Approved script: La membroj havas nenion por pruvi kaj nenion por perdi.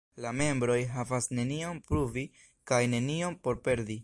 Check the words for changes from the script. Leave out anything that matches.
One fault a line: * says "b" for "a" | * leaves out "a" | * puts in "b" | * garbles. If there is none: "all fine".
* leaves out "por"